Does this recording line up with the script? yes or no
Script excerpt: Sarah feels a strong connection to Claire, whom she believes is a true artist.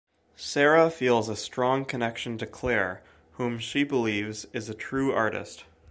yes